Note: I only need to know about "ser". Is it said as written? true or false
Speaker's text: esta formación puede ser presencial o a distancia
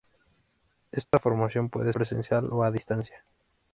false